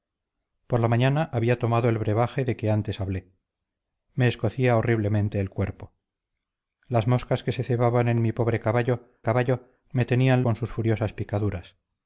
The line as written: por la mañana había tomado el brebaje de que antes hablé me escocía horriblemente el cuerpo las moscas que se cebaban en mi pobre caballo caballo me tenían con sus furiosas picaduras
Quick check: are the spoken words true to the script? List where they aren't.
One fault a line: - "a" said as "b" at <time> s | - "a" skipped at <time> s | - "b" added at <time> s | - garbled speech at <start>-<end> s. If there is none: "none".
none